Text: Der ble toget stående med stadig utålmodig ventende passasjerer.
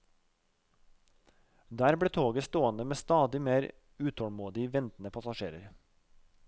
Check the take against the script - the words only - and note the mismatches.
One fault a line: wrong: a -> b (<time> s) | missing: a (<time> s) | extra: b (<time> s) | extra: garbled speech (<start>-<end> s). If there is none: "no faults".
extra: mer (3.4 s)